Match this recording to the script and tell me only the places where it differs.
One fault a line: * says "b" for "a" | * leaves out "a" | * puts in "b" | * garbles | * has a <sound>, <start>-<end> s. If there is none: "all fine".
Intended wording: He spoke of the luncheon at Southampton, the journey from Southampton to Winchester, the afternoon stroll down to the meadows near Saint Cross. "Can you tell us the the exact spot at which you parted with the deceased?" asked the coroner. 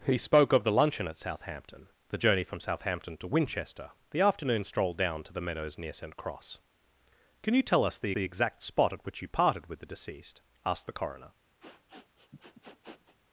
* has a sniff, 11.6-13.2 s